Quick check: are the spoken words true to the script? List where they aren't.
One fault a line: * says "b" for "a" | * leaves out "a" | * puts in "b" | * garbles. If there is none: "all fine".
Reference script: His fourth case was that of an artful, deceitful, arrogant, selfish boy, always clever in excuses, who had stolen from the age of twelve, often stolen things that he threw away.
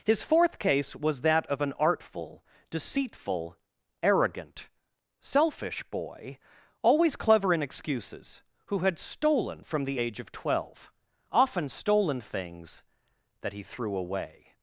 all fine